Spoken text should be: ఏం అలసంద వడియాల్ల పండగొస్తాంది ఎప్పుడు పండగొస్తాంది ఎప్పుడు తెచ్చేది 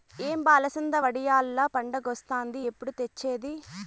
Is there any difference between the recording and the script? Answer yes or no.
yes